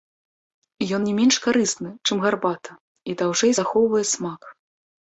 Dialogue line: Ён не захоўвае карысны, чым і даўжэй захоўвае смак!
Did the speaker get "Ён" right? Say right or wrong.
right